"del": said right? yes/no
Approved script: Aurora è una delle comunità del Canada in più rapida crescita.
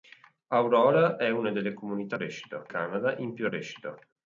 no